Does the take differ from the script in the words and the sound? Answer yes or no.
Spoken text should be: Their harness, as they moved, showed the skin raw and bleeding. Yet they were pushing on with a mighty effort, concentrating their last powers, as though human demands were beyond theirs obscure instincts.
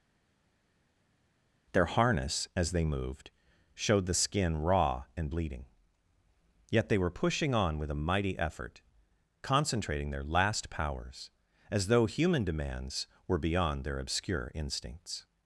yes